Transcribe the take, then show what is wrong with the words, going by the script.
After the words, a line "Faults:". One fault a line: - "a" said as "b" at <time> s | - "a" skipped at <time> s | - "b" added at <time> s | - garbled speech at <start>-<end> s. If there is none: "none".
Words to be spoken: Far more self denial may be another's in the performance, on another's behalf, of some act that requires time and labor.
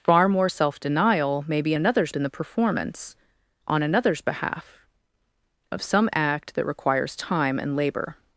Far more self denial may be another's in the performance, on another's behalf, of some act that requires time and labor.
Faults:
none